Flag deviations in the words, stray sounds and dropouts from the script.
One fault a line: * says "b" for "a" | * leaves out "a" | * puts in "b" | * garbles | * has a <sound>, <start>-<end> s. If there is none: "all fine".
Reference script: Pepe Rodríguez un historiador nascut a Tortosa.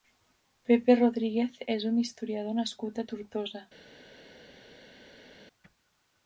* puts in "és"